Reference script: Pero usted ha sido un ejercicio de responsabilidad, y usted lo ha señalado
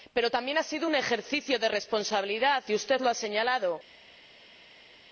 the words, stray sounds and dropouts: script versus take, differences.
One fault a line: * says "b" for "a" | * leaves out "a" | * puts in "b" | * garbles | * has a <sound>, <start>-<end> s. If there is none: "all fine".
* says "también" for "usted"